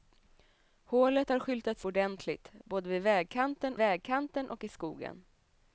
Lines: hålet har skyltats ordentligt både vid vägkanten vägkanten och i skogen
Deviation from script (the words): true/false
false